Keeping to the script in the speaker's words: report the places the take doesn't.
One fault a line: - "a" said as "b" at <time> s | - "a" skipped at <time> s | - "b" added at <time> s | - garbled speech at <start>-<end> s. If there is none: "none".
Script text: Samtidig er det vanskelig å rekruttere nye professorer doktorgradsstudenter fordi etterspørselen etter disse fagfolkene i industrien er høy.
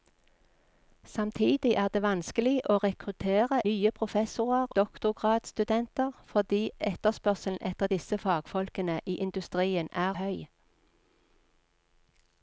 none